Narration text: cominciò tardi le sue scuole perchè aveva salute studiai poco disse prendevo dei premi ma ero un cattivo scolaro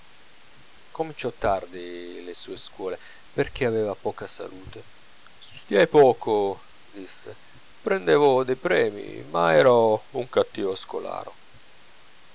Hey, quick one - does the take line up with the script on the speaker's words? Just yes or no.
no